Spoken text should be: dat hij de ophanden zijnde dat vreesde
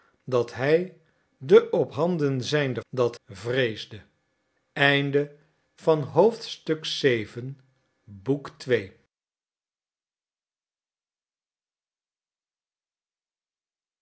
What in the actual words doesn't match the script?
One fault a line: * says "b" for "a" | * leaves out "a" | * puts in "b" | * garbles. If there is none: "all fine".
all fine